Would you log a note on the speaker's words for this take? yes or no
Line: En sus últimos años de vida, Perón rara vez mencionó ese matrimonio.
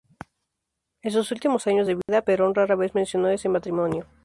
no